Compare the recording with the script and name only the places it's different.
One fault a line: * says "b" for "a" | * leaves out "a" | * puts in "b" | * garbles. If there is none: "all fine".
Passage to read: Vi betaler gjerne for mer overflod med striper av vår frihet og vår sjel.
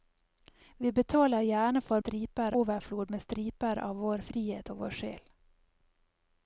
* says "striper" for "mer"